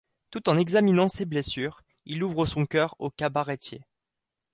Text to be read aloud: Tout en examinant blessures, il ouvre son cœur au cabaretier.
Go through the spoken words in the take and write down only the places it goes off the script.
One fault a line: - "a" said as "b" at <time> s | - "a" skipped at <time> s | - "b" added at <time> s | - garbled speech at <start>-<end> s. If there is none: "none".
- "ses" added at 1.1 s